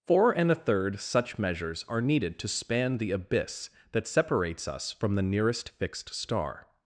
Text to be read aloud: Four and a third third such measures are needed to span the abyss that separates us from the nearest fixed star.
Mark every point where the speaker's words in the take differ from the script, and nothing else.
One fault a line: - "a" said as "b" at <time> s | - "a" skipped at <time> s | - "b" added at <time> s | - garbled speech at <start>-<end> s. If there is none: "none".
- "third" skipped at 1.0 s